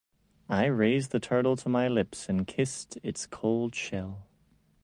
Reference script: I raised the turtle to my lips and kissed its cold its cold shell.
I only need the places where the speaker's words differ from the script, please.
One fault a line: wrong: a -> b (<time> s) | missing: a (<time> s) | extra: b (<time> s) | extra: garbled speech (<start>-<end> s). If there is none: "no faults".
missing: its cold (3.7 s)